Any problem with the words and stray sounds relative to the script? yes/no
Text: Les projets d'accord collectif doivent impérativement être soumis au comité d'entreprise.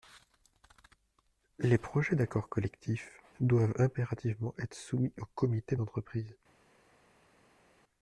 no